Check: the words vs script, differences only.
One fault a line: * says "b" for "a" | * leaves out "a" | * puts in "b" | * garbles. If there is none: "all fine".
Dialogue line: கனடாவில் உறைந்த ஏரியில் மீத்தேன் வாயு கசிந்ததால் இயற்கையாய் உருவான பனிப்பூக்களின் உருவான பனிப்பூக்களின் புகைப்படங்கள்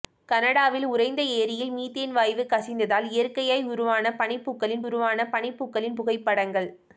all fine